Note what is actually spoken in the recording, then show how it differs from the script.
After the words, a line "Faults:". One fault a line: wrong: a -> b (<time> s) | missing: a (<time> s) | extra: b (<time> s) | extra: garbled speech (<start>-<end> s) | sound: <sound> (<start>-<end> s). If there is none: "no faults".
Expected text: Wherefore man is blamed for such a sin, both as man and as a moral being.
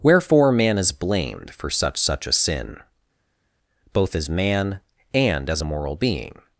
Wherefore man is blamed for such such a sin, both as man and as a moral being.
Faults:
extra: such (2.0 s)